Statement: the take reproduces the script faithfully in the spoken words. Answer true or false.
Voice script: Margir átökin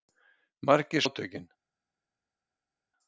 true